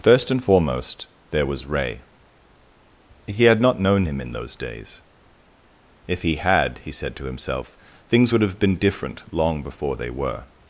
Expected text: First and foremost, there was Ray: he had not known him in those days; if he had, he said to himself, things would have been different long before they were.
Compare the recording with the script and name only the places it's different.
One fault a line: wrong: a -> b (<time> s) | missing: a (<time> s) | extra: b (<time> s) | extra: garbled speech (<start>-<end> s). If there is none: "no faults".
no faults